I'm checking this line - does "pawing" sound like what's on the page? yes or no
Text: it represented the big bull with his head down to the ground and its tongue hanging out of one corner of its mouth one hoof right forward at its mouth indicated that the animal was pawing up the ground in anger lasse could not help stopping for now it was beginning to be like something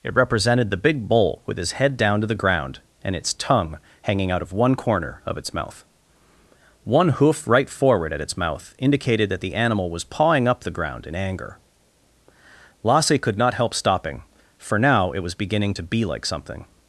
yes